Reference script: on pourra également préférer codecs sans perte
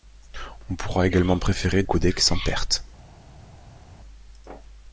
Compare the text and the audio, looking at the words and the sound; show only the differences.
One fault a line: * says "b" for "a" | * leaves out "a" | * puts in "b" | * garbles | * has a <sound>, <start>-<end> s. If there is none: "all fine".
all fine